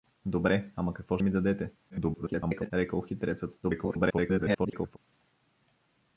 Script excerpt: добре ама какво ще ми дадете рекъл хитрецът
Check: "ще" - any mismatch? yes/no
yes